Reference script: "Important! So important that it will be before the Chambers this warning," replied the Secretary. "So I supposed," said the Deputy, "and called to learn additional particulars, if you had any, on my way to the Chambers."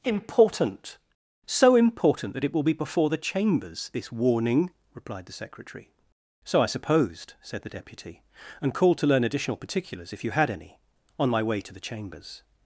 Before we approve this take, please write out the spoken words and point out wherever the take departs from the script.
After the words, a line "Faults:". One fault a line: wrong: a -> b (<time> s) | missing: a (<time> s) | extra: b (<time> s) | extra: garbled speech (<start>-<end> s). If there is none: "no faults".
"Important! So important that it will be before the Chambers this warning," replied the Secretary. "So I supposed," said the Deputy, "and called to learn additional particulars, if you had any, on my way to the Chambers."
Faults:
no faults